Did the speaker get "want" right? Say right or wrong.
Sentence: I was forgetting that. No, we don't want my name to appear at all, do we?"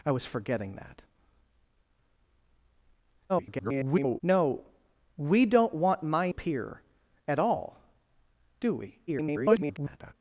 right